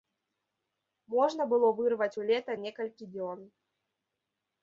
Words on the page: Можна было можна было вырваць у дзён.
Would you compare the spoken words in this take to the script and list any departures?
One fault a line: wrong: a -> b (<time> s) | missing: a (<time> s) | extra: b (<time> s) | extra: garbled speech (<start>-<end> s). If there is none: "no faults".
wrong: можна было вырваць у -> вырваць у лета некалькі (1.8 s)